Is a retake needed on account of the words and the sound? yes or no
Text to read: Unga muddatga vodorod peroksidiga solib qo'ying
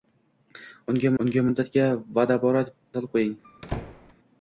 yes